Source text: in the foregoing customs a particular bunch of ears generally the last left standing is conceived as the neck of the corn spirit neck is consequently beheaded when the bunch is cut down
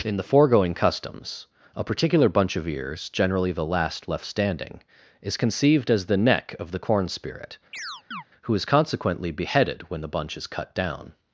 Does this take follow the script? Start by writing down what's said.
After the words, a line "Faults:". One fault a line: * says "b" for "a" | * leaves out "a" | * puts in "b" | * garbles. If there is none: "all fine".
in the foregoing customs a particular bunch of ears generally the last left standing is conceived as the neck of the corn spirit who is consequently beheaded when the bunch is cut down
Faults:
* says "who" for "neck"